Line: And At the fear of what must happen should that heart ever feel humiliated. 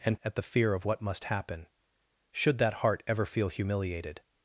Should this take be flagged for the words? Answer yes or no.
no